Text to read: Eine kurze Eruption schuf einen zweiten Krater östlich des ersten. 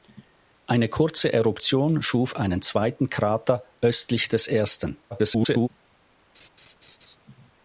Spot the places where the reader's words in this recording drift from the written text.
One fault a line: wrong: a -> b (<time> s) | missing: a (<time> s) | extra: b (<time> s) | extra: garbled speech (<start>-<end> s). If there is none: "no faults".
extra: garbled speech (5.1-5.7 s)